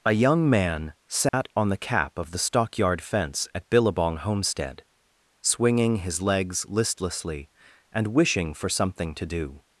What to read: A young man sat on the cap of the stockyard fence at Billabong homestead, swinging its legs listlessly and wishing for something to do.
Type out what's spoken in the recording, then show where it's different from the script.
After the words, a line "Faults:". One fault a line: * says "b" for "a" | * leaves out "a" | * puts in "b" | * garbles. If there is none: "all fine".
A young man sat on the cap of the stockyard fence at Billabong homestead, swinging his legs listlessly and wishing for something to do.
Faults:
* says "his" for "its"